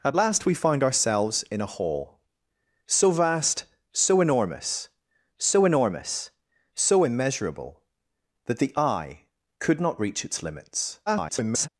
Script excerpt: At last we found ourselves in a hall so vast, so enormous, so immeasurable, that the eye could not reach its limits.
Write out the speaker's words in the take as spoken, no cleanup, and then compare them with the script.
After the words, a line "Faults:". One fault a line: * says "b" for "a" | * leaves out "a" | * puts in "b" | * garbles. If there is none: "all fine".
At last we found ourselves in a hall so vast, so enormous so enormous, so immeasurable, that the eye could not reach its limits. [garbled]
Faults:
* puts in "enormous so"
* garbles